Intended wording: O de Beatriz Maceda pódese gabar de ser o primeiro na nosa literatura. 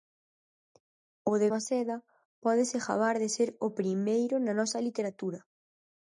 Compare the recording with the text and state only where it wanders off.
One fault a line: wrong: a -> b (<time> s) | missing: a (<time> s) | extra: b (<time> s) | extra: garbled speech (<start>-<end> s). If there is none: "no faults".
missing: Beatriz (1.5 s)